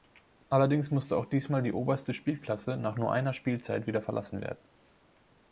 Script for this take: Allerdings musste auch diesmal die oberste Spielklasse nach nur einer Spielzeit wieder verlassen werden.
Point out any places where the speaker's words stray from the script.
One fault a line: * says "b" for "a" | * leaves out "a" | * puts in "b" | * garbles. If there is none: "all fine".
all fine